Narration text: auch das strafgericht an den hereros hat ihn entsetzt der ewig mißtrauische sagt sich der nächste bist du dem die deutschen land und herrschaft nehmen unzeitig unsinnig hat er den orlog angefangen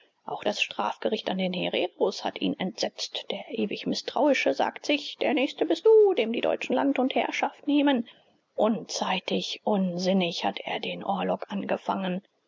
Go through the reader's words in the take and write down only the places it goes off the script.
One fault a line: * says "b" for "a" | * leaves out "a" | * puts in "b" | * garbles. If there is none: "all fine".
all fine